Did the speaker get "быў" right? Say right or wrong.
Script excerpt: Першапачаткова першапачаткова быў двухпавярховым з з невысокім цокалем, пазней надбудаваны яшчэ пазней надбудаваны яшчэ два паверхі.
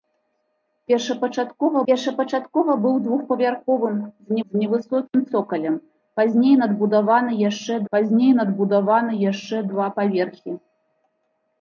right